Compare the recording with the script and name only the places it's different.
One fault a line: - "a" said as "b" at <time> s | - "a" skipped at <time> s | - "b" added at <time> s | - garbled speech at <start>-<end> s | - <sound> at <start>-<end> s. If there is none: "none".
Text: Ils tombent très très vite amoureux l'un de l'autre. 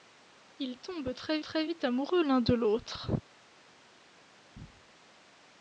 none